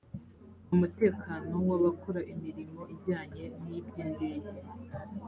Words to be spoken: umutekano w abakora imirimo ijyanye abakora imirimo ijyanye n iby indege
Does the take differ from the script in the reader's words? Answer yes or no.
yes